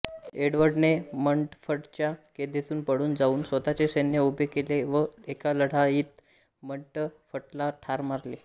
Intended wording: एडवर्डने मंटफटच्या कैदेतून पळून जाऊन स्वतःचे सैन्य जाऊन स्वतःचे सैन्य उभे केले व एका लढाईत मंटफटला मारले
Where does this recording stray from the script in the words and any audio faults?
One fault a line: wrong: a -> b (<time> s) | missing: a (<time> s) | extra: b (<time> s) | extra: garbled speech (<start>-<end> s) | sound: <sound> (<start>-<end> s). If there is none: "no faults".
missing: जाऊन स्वतःचे सैन्य (4.2 s)
extra: ठार (7.8 s)